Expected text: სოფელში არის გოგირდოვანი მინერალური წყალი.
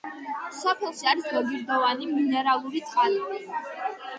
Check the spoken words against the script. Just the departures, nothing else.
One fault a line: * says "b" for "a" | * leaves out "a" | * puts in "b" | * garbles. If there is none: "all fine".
all fine